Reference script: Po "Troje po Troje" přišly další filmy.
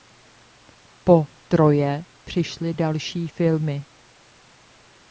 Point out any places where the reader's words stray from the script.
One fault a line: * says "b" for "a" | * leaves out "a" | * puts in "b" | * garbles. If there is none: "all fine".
* leaves out "po Troje"